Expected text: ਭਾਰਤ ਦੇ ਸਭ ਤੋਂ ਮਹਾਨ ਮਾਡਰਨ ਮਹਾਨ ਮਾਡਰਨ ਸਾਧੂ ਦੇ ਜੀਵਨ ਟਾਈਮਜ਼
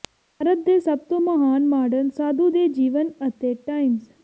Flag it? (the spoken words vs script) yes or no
yes